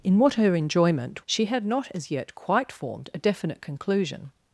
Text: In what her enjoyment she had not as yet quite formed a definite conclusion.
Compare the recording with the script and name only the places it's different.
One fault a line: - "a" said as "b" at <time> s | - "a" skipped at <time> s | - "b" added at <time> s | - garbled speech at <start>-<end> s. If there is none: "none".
none